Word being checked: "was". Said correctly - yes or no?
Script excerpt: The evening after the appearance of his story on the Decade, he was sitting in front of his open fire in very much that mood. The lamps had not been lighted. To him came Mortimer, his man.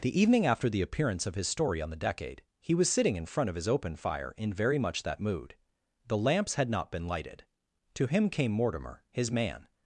yes